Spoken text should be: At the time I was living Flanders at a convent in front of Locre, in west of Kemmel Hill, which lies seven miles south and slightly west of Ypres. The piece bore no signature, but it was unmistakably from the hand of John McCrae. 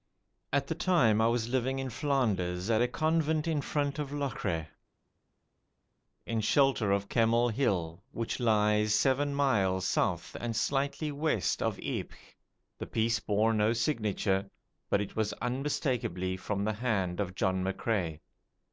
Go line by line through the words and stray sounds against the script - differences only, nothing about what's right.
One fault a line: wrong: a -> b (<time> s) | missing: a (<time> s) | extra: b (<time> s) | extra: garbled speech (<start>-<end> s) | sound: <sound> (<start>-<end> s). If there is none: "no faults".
extra: in (1.8 s)
wrong: west -> shelter (6.4 s)